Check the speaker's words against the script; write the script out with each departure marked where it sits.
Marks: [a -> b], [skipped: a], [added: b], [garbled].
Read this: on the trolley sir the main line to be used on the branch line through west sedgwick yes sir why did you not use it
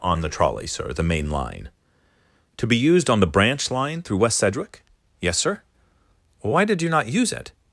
on the trolley sir the main line to be used on the branch line through west sedgwick yes sir why did you not use it